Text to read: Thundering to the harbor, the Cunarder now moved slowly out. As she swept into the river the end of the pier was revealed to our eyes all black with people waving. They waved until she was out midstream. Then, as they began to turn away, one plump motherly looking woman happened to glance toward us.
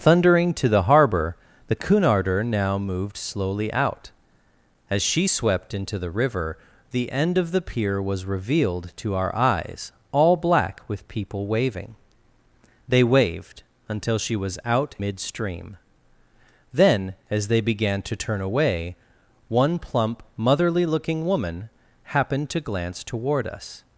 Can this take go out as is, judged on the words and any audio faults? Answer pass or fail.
pass